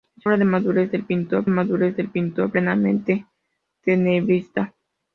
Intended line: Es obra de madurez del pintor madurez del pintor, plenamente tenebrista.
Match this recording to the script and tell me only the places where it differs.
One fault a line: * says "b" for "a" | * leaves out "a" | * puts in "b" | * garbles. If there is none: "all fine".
all fine